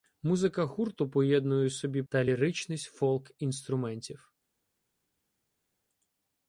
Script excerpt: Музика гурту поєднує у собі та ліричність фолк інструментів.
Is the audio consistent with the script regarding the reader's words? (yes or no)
yes